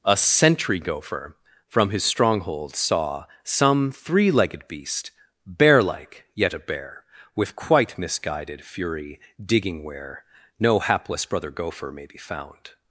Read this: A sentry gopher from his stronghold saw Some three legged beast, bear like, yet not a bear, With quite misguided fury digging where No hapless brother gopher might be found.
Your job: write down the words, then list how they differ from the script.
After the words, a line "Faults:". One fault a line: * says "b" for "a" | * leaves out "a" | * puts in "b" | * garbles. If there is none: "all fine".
A sentry gopher from his stronghold saw Some three legged beast, bear like, yet a bear, With quite misguided fury digging where No hapless brother gopher may be found.
Faults:
* leaves out "not"
* says "may" for "might"